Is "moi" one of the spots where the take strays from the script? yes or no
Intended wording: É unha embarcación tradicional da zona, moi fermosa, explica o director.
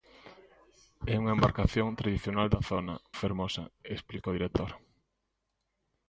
yes